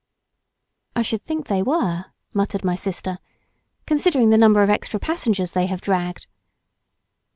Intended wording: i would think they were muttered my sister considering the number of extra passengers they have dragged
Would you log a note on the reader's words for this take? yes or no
yes